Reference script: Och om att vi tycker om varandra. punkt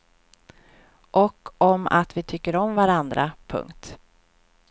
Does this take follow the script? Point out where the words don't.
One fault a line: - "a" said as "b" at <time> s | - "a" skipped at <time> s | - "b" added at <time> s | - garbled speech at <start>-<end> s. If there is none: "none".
none